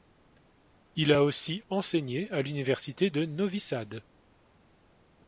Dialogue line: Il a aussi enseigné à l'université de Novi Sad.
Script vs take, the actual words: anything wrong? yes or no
no